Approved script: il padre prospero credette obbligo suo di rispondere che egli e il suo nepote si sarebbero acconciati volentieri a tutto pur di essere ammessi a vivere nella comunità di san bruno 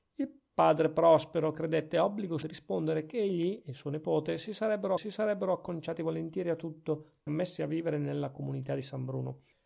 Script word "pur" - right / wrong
wrong